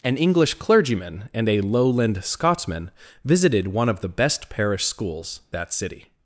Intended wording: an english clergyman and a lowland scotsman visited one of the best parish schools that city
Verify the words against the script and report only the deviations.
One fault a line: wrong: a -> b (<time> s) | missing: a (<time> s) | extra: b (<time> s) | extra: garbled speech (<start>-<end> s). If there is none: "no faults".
no faults